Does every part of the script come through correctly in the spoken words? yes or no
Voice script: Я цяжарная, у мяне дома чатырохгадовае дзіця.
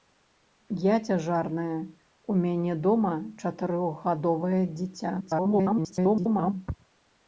no